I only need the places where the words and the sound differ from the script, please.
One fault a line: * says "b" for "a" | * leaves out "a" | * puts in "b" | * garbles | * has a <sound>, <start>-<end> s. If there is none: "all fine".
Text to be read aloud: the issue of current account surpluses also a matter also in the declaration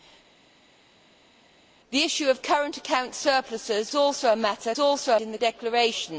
all fine